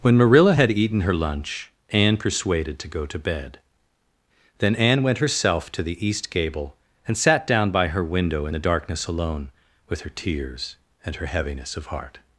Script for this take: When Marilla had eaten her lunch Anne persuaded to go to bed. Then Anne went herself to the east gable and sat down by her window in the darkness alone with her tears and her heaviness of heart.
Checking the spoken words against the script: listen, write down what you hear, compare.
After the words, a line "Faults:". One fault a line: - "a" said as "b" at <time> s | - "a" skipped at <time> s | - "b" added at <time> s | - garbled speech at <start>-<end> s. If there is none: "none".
When Marilla had eaten her lunch Anne persuaded to go to bed. Then Anne went herself to the east gable and sat down by her window in the darkness alone with her tears and her heaviness of heart.
Faults:
none